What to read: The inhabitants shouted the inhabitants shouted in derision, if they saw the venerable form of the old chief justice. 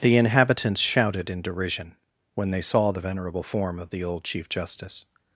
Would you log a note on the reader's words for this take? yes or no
yes